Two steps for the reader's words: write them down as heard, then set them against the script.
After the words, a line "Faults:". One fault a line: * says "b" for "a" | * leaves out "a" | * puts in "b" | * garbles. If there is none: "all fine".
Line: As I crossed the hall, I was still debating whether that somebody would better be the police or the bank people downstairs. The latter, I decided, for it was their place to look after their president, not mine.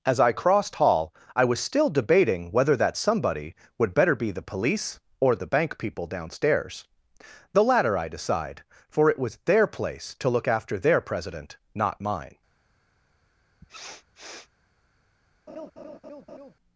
As I crossed hall, I was still debating whether that somebody would better be the police or the bank people downstairs. The latter, I decide, for it was their place to look after their president, not mine.
Faults:
* leaves out "the"
* says "decide" for "decided"